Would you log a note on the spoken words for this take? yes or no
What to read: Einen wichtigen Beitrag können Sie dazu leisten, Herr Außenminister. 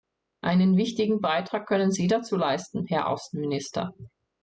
no